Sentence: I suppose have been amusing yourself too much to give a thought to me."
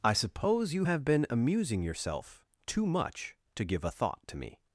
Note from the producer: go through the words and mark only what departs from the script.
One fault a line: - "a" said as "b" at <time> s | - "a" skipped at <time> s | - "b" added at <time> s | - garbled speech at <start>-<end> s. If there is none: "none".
- "you" added at 0.7 s